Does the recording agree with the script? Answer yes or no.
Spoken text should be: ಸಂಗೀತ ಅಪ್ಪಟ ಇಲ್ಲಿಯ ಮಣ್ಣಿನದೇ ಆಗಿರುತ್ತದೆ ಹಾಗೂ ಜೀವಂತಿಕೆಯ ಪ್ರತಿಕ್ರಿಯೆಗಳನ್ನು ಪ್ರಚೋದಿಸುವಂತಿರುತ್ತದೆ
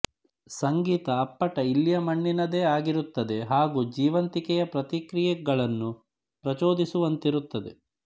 yes